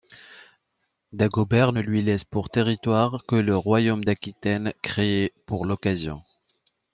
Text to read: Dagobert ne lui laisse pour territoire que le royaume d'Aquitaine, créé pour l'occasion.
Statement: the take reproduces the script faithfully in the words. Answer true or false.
true